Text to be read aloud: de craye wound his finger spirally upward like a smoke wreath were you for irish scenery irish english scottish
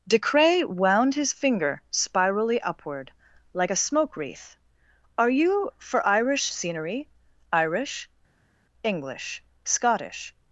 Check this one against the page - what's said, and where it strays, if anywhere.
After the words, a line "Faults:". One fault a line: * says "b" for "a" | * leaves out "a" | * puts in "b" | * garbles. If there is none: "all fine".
de craye wound his finger spirally upward like a smoke wreath are you for irish scenery irish english scottish
Faults:
* says "are" for "were"